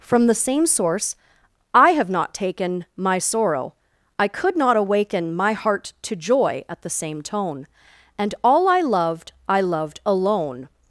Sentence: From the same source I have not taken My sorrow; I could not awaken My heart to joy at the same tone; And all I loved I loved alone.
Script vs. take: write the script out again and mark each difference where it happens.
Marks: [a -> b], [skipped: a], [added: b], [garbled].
From the same source I have not taken My sorrow; I could not awaken My heart to joy at the same tone; And all I loved I loved alone.